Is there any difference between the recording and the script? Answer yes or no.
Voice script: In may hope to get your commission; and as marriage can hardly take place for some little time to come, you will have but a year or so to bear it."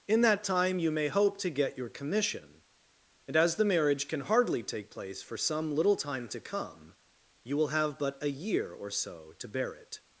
yes